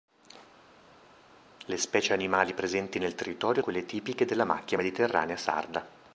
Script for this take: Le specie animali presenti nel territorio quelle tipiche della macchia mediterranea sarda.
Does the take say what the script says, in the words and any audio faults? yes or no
yes